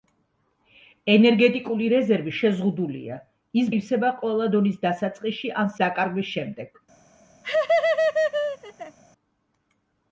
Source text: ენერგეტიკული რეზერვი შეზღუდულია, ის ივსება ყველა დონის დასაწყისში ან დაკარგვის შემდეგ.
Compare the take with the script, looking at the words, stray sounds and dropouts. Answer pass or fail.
fail